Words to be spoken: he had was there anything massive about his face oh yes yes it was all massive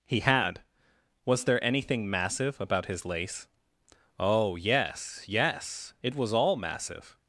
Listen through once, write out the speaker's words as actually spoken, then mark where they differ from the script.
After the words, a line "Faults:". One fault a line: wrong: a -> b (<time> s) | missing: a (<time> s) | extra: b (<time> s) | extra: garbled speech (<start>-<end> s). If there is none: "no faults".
he had was there anything massive about his lace oh yes yes it was all massive
Faults:
wrong: face -> lace (3.0 s)